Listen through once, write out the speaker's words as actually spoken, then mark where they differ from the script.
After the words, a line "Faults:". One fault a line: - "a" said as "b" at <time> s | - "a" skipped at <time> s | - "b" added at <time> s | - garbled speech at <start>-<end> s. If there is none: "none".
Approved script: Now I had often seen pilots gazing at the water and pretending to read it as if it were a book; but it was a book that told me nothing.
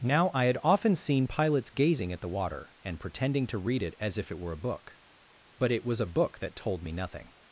Now I had often seen pilots gazing at the water and pretending to read it as if it were a book; but it was a book that told me nothing.
Faults:
none